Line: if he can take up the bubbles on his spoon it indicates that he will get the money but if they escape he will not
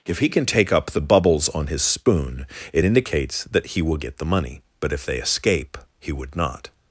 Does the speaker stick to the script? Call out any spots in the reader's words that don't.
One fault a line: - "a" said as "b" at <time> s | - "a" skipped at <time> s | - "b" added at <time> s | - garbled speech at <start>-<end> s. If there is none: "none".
- "will" said as "would" at 6.1 s